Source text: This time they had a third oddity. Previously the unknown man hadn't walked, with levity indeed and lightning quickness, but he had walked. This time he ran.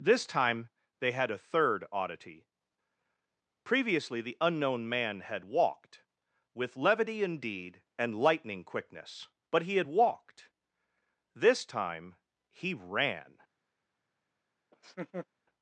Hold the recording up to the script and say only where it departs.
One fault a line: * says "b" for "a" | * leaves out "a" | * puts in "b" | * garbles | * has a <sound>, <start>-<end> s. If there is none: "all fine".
* says "had" for "hadn't"
* has a laugh, 14.7-15.3 s